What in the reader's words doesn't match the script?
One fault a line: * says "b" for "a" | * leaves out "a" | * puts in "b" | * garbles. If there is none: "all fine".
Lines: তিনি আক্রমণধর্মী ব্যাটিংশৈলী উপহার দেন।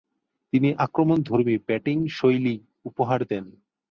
all fine